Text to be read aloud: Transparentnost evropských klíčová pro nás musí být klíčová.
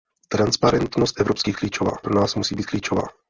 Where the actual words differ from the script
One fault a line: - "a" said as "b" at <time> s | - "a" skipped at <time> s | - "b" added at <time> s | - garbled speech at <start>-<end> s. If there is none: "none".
none